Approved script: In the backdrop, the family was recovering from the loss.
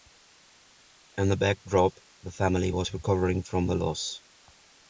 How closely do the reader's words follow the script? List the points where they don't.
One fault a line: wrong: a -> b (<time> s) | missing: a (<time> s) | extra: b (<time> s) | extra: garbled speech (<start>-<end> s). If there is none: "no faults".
no faults